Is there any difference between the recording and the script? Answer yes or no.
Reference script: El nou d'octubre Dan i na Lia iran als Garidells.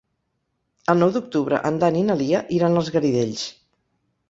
yes